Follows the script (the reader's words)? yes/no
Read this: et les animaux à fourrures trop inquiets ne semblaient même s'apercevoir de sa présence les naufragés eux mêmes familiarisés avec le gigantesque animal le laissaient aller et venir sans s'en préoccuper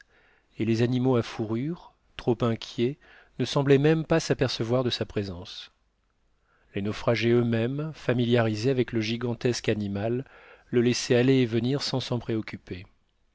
no